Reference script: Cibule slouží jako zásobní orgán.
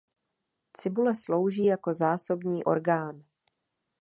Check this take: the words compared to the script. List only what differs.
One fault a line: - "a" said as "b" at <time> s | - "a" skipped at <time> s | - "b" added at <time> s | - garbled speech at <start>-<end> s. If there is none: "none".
none